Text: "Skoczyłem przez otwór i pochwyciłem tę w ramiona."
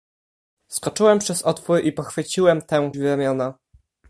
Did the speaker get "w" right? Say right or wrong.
right